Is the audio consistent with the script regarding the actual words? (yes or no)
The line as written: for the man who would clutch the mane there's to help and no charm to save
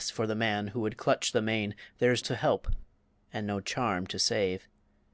yes